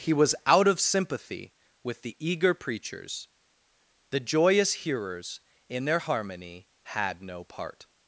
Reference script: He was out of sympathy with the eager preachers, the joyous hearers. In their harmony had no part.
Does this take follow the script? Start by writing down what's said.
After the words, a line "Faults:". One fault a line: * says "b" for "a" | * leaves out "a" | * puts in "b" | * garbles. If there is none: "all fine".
He was out of sympathy with the eager preachers, the joyous hearers. In their harmony had no part.
Faults:
all fine